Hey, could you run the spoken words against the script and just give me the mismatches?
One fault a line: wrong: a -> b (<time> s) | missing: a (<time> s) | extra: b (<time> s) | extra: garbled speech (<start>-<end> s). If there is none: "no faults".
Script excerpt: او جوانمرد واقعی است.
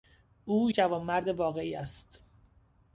no faults